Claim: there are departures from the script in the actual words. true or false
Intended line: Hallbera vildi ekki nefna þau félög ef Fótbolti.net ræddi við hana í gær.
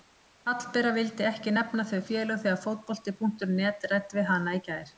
true